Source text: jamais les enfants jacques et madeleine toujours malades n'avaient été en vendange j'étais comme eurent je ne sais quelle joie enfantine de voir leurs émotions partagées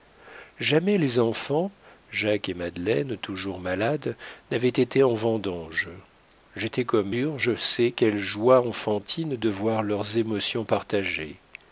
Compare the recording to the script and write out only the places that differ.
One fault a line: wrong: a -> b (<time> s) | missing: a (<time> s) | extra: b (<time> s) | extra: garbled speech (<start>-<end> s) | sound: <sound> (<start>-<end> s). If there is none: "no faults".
no faults